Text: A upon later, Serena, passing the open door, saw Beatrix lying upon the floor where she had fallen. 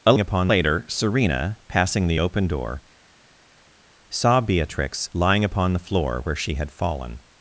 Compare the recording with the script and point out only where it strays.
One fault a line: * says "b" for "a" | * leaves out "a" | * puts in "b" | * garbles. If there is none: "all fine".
all fine